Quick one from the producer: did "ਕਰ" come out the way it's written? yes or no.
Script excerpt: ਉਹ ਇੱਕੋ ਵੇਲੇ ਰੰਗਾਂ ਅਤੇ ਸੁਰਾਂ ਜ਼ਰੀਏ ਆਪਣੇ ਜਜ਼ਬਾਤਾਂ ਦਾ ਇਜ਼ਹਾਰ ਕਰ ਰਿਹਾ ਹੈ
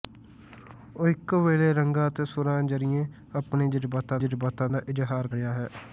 no